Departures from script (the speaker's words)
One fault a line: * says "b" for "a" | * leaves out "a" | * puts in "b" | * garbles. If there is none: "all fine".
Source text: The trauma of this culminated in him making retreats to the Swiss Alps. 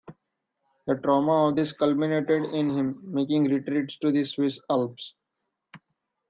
all fine